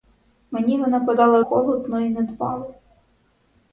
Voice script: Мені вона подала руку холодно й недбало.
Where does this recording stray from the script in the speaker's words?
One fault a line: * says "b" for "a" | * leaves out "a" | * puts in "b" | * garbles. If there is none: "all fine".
* leaves out "руку"